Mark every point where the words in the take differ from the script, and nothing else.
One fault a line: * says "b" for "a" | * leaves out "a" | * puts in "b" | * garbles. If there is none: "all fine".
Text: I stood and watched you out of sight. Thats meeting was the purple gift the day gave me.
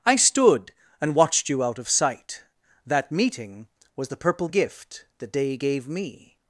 * says "That" for "Thats"